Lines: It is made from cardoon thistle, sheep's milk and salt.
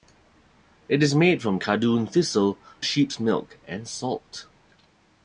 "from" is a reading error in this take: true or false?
false